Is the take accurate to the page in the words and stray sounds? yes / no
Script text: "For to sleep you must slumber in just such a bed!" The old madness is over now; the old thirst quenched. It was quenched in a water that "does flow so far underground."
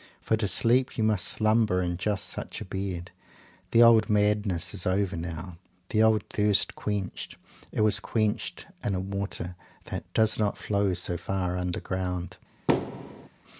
no